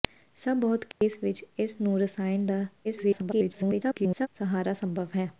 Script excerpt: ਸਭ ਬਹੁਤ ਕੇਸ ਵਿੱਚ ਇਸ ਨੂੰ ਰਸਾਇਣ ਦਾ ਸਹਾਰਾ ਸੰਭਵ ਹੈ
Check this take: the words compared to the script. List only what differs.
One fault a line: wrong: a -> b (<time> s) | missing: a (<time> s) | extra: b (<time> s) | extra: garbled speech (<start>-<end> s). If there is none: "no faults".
extra: garbled speech (2.8-4.3 s)